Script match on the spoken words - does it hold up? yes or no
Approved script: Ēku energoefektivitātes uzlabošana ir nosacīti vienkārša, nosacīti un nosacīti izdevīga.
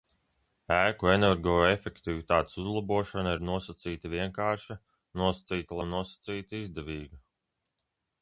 yes